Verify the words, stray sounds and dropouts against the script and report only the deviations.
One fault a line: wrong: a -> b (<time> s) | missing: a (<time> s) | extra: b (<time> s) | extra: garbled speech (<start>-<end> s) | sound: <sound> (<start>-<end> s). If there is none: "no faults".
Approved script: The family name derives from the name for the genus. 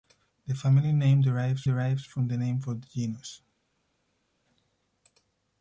extra: derives (1.6 s)